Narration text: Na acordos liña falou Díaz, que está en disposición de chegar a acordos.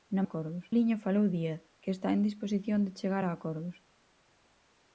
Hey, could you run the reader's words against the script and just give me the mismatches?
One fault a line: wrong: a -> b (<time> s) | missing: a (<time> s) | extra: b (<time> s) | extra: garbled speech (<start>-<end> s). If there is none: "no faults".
no faults